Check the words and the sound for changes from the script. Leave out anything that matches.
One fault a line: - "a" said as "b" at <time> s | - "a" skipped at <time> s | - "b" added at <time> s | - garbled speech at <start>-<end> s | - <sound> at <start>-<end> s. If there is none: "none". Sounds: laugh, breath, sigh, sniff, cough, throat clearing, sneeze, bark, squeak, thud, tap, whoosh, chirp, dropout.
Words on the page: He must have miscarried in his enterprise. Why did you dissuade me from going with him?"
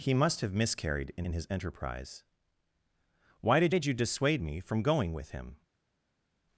- "in" added at 1.2 s
- "did" added at 3.7 s